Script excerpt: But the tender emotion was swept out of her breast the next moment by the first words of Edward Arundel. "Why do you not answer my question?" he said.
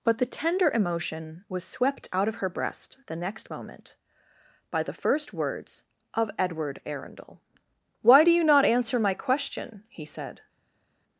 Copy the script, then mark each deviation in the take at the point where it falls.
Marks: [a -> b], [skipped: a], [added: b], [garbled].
But the tender emotion was swept out of her breast the next moment by the first words of Edward Arundel. "Why do you not answer my question?" he said.